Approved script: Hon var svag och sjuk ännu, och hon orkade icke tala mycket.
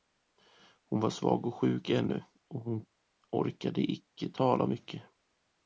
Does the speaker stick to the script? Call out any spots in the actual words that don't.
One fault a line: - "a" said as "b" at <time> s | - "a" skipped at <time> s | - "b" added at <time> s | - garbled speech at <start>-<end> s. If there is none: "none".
none